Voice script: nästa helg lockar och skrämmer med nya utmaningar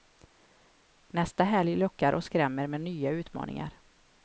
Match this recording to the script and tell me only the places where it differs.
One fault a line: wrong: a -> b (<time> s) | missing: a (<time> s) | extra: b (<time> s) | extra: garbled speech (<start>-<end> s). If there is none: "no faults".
no faults